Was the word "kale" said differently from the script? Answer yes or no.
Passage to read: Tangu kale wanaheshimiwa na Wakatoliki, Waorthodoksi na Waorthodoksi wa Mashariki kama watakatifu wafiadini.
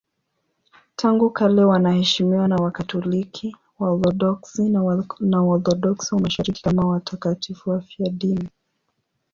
no